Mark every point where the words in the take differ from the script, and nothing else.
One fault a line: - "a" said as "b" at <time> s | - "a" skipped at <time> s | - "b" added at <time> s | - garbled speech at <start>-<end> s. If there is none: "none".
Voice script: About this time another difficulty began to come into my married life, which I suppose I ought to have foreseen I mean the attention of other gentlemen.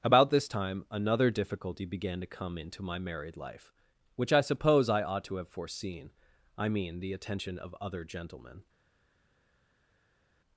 none